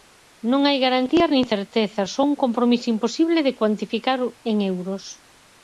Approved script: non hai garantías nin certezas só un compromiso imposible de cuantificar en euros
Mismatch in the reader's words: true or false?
false